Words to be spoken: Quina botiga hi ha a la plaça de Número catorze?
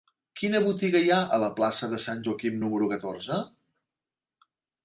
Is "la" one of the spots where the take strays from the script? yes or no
no